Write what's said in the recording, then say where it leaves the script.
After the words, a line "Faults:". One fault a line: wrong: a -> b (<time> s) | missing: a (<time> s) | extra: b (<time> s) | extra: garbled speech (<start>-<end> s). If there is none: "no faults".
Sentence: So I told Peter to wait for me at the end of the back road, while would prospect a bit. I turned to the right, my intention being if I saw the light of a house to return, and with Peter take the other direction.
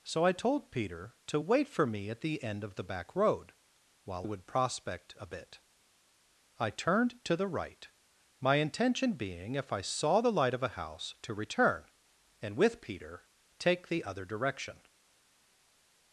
So I told Peter to wait for me at the end of the back road, while would prospect a bit. I turned to the right, my intention being if I saw the light of a house to return, and with Peter take the other direction.
Faults:
no faults